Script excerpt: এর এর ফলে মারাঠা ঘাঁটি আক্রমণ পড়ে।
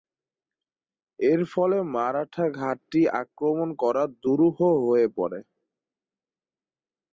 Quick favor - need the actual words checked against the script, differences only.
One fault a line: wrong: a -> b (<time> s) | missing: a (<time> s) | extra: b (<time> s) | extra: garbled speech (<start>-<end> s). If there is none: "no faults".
missing: এর (1.4 s)
extra: করা দুরূহ হয়ে (3.8 s)